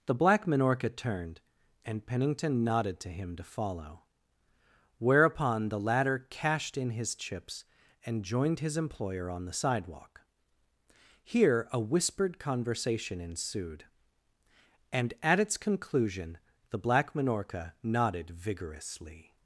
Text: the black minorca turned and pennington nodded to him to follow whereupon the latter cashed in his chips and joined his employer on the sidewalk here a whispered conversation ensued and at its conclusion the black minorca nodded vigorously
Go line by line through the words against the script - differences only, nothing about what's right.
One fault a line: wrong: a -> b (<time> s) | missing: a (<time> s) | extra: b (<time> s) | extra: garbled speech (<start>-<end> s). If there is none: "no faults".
no faults